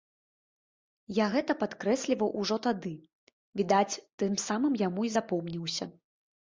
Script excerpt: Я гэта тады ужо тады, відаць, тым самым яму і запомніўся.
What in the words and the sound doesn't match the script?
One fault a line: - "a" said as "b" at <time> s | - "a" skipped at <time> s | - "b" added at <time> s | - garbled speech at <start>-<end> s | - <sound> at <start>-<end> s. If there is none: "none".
- "тады" said as "падкрэсліваў" at 1.6 s